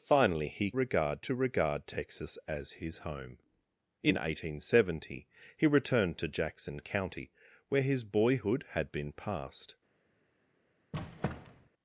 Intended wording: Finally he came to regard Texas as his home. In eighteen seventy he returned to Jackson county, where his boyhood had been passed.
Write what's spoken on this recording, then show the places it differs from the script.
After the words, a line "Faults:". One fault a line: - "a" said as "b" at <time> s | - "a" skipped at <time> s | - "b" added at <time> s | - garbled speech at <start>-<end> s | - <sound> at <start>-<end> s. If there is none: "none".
Finally he regard to regard Texas as his home. In eighteen seventy he returned to Jackson county, where his boyhood had been passed.
Faults:
- "came" said as "regard" at 0.7 s
- squeak at 10.9-11.7 s